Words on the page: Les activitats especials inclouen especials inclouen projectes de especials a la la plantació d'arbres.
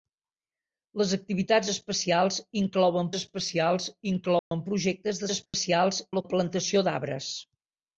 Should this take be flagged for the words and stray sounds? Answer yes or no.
yes